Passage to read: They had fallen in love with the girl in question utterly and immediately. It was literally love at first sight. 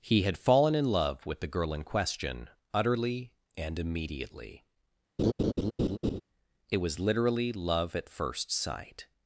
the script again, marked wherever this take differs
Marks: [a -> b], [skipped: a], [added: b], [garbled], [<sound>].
[They -> He] had fallen in love with the girl in question utterly and immediately. [laugh] It was literally love at first sight.